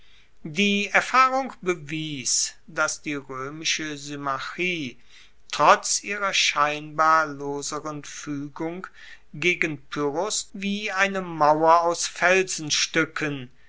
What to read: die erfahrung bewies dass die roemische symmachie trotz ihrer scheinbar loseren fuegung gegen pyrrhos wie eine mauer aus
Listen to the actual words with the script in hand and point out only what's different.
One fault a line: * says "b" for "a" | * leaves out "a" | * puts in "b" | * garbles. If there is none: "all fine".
all fine